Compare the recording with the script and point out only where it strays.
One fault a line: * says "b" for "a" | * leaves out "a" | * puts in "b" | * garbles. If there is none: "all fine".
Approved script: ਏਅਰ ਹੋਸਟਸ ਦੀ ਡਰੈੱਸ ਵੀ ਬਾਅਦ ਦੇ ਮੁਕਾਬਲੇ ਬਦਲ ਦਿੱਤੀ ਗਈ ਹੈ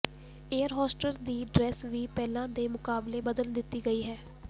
* says "ਪਹਿਲਾਂ" for "ਬਾਅਦ"